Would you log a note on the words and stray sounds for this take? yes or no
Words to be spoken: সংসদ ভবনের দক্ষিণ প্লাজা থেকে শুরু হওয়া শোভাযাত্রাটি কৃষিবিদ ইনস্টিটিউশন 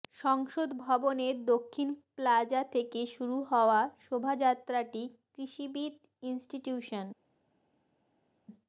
no